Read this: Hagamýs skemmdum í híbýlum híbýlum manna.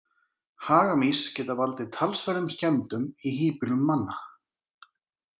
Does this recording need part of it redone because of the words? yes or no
yes